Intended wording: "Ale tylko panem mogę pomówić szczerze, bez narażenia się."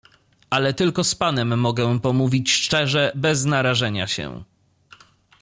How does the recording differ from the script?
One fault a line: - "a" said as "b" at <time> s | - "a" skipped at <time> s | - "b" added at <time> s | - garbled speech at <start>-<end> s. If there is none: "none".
- "z" added at 1.0 s